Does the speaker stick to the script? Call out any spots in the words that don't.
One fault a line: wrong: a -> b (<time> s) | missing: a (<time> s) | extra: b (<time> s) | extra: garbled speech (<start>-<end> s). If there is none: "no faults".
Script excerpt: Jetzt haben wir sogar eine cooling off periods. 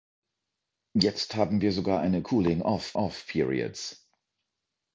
extra: off (2.9 s)